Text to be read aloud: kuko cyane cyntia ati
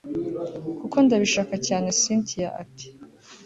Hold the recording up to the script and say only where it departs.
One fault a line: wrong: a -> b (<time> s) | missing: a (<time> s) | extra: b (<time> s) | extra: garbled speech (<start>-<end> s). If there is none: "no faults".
extra: ndabishaka (1.1 s)